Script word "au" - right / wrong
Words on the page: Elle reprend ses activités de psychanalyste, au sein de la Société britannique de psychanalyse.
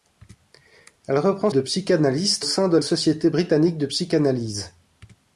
wrong